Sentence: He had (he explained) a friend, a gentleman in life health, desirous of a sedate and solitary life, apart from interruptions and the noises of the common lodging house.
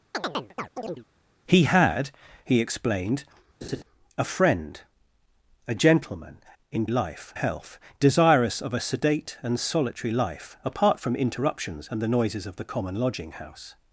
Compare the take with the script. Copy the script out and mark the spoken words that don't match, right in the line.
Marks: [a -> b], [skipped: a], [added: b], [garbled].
He had (he explained) a friend, a gentleman in life health, desirous of a sedate and solitary life, apart from interruptions and the noises of the common lodging house.